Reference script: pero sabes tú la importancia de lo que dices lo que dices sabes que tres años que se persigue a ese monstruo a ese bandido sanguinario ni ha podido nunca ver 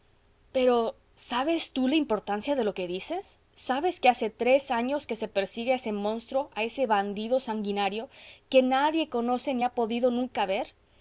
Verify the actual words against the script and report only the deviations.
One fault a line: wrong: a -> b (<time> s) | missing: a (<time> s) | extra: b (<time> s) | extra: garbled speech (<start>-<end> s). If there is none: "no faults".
wrong: lo -> sabes (3.5 s)
wrong: dices sabes que -> hace (4.1 s)
extra: que nadie conoce (8.5 s)